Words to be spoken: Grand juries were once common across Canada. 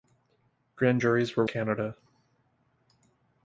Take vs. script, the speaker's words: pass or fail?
fail